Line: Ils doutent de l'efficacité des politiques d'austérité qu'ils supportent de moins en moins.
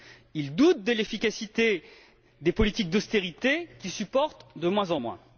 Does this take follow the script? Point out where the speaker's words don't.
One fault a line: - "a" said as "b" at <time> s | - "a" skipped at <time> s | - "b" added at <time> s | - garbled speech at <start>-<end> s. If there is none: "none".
none